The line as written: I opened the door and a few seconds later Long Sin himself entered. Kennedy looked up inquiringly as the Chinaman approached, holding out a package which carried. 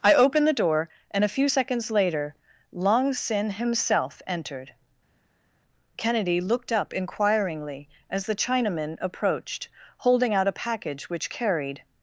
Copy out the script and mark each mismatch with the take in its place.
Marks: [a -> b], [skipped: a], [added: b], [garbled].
I opened the door and a few seconds later Long Sin himself entered. Kennedy looked up inquiringly as the Chinaman approached, holding out a package which carried.